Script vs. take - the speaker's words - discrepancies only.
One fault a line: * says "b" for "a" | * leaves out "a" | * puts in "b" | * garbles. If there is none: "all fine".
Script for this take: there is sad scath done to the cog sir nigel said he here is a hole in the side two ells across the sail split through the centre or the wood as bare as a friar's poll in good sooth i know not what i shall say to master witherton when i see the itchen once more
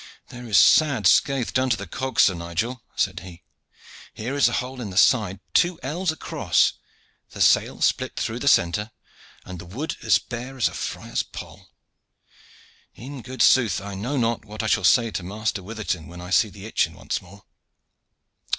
* says "and" for "or"